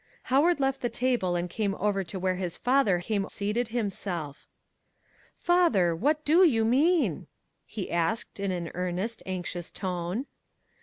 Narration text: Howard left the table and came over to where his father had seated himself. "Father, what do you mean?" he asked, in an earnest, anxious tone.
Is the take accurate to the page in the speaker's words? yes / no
no